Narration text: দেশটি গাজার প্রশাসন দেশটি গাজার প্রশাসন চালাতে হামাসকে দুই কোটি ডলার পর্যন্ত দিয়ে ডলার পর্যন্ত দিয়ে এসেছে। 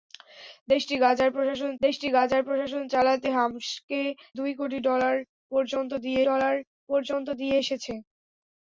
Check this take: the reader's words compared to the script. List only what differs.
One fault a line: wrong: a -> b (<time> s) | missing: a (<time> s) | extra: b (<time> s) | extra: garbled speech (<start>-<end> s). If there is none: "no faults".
no faults